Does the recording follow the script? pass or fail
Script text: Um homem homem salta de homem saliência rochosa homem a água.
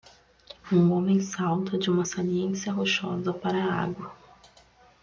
fail